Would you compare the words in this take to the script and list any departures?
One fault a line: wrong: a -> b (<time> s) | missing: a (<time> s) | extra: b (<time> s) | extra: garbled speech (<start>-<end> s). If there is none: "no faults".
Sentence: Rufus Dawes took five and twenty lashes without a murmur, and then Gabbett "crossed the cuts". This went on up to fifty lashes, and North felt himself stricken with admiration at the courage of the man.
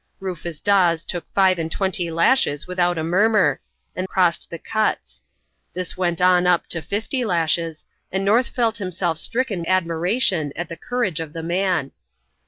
missing: then Gabbett (4.1 s)
missing: with (9.6 s)